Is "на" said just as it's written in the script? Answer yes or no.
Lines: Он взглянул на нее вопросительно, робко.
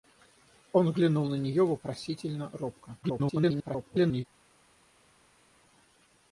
yes